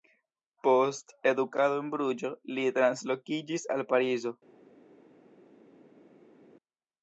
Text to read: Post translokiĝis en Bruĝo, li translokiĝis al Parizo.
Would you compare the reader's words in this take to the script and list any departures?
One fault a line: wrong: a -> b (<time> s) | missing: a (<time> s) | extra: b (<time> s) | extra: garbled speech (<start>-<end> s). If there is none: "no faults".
wrong: translokiĝis -> edukado (1.3 s)